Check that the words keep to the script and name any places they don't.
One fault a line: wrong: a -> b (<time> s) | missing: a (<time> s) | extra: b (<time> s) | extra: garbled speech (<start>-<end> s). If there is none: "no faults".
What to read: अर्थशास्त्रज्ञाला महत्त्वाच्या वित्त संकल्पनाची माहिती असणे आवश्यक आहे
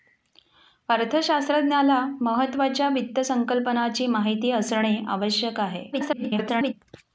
extra: garbled speech (5.9-6.7 s)